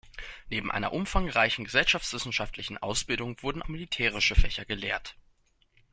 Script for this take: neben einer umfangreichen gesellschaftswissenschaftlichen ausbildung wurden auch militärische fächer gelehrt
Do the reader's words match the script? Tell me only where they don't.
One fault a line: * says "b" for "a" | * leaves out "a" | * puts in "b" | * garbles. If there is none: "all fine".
* leaves out "auch"